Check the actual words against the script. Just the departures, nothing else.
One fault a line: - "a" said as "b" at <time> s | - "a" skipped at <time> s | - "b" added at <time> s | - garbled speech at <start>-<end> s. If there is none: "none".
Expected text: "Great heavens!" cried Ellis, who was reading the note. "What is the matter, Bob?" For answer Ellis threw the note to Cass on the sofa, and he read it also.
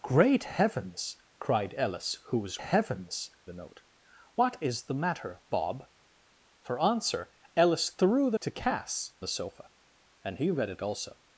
- "reading" said as "heavens" at 2.6 s
- "note" skipped at 8.4 s
- "on" skipped at 9.2 s